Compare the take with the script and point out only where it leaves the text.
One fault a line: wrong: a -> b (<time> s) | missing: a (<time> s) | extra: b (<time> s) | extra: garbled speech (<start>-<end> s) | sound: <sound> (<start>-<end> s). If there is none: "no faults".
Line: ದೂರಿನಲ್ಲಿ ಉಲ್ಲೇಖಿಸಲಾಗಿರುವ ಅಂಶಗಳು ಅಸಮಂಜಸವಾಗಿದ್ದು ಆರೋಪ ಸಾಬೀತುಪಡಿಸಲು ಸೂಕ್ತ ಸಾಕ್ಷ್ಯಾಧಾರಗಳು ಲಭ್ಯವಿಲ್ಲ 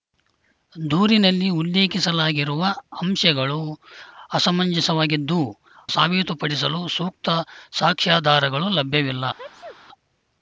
missing: ಆರೋಪ (5.4 s)
sound: sneeze (9.4-9.8 s)